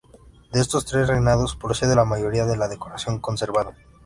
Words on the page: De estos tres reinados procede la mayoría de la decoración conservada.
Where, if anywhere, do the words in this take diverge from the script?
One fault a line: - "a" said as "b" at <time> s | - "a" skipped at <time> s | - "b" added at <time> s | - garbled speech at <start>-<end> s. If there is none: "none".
none